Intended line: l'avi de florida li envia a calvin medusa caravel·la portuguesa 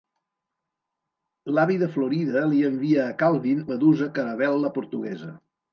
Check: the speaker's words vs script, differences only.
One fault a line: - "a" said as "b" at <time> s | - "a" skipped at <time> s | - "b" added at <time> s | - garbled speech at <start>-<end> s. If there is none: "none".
none